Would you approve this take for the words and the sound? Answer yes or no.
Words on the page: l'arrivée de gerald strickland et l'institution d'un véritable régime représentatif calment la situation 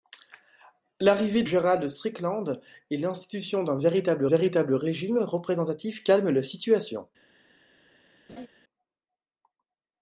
no